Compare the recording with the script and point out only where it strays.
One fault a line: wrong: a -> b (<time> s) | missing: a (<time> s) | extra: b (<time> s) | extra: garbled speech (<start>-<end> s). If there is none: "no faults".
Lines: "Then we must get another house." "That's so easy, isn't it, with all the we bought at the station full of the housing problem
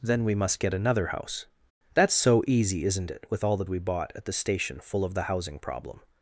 no faults